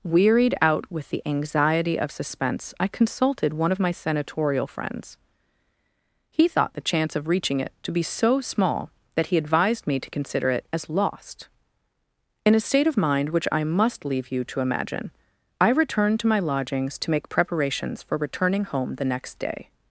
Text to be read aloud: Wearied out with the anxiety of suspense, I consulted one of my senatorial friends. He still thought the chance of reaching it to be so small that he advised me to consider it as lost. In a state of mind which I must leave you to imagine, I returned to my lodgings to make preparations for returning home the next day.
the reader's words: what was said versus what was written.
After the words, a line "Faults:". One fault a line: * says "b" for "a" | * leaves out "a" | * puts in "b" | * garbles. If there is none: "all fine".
Wearied out with the anxiety of suspense, I consulted one of my senatorial friends. He thought the chance of reaching it to be so small that he advised me to consider it as lost. In a state of mind which I must leave you to imagine, I returned to my lodgings to make preparations for returning home the next day.
Faults:
* leaves out "still"